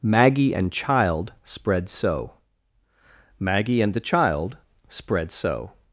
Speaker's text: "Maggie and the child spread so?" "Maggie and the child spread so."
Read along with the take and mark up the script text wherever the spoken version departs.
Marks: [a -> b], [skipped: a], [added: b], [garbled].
"Maggie and [skipped: the] child spread so?" "Maggie and the child spread so."